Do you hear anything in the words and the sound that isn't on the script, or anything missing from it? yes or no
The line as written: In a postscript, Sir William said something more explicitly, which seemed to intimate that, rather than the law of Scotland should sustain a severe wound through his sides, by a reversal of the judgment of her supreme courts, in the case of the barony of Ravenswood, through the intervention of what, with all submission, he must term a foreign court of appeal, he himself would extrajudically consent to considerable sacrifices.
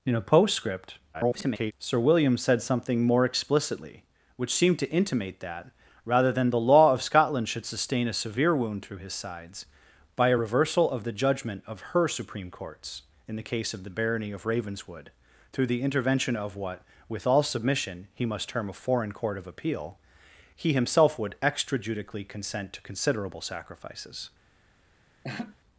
yes